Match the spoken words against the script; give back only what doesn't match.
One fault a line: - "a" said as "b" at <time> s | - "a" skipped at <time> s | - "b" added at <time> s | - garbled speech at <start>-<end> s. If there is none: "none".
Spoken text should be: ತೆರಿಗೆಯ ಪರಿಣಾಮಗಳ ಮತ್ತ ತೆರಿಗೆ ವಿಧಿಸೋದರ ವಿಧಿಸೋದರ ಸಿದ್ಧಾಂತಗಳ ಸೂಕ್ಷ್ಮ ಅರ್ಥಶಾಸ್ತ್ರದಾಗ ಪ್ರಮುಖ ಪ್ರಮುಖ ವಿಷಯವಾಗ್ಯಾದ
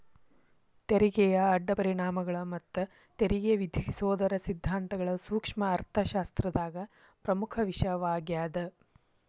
- "ಅಡ್ಡ" added at 1.5 s
- "ವಿಧಿಸೋದರ" skipped at 4.4 s
- "ಪ್ರಮುಖ" skipped at 7.6 s